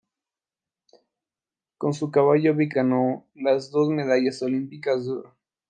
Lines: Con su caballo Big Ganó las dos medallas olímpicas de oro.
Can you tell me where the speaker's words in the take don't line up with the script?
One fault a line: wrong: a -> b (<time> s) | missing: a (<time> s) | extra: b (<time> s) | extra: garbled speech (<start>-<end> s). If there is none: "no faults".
no faults